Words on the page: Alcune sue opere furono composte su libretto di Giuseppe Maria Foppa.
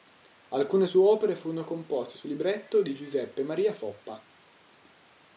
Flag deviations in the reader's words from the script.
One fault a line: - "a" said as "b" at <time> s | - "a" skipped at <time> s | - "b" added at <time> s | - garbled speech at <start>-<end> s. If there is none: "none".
none